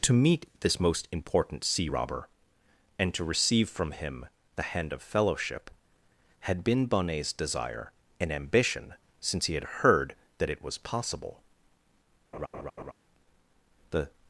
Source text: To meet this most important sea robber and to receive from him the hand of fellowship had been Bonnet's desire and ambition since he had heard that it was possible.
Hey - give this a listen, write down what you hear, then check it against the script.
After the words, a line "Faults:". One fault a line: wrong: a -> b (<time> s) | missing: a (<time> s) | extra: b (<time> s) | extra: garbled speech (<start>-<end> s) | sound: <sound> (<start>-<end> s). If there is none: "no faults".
To meet this most important sea robber and to receive from him the hand of fellowship had been Bonnet's desire and ambition since he had heard that it was possible. The
Faults:
sound: laugh (12.3-12.9 s)
extra: The (13.9 s)